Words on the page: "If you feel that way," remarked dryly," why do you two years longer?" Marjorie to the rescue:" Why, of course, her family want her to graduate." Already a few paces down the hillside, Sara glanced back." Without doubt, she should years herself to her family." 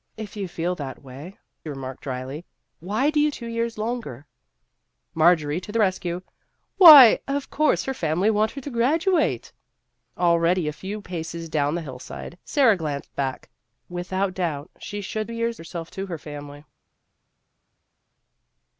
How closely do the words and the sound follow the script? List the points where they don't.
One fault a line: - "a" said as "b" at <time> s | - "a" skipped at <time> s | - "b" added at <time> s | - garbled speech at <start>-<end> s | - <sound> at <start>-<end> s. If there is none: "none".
none